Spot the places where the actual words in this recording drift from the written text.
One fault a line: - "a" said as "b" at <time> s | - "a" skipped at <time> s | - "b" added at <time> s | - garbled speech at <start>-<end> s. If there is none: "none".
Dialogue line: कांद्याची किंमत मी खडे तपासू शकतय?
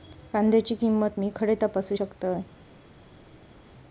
none